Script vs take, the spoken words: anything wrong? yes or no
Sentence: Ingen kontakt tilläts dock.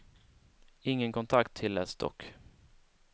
no